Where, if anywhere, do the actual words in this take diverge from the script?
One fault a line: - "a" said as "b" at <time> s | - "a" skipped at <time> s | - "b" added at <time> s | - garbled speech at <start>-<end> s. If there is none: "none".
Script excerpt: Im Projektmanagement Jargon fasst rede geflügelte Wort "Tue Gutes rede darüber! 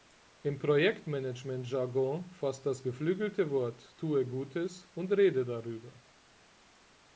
- "rede" said as "das" at 2.6 s
- "und" added at 4.9 s